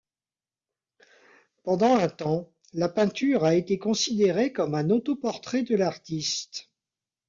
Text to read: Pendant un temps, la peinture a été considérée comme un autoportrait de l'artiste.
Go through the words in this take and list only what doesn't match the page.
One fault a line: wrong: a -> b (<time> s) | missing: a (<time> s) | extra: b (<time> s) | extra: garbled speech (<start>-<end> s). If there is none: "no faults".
no faults